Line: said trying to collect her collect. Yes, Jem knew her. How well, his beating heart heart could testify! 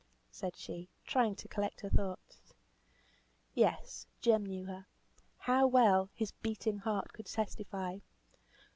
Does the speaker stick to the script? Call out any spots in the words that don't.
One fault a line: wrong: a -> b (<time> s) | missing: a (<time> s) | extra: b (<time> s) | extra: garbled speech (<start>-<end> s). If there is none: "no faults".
extra: she (0.6 s)
wrong: collect -> thoughts (1.9 s)
missing: heart (7.1 s)